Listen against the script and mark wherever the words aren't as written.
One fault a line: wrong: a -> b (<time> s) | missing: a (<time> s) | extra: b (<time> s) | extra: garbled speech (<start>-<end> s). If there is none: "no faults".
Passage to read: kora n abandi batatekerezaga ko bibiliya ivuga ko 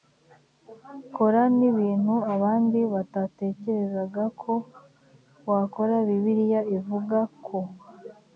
extra: ibintu (1.7 s)
extra: wakora (5.5 s)